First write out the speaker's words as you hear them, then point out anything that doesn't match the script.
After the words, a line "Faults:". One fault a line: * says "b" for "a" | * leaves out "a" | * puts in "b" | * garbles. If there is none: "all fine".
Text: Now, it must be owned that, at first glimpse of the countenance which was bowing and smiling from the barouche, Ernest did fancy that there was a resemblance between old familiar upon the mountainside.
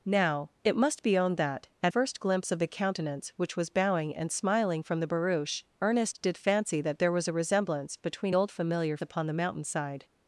Now, it must be owned that, at first glimpse of the countenance which was bowing and smiling from the barouche, Ernest did fancy that there was a resemblance between old familiar upon the mountainside.
Faults:
all fine